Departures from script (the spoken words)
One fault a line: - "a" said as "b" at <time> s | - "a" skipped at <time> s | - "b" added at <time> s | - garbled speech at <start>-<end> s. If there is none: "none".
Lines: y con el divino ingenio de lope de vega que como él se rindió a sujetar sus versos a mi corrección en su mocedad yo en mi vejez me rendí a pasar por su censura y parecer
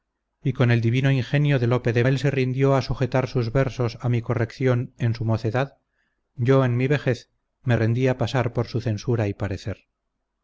- "vega que como" skipped at 2.0 s